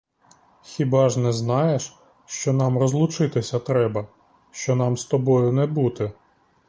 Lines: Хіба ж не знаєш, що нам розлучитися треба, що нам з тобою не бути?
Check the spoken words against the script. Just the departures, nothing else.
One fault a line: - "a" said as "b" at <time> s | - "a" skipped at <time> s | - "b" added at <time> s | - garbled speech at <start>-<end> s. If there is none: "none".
none